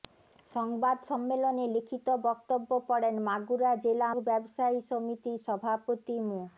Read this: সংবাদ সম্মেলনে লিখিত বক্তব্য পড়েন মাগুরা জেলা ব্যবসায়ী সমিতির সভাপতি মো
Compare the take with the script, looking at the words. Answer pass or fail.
pass